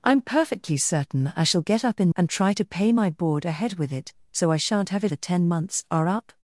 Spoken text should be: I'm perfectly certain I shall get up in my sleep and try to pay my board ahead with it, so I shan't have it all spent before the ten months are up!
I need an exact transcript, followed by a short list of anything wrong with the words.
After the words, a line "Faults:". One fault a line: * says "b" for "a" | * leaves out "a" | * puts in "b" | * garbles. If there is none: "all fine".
I'm perfectly certain I shall get up in and try to pay my board ahead with it, so I shan't have it the ten months are up!
Faults:
* leaves out "my sleep"
* leaves out "all spent before"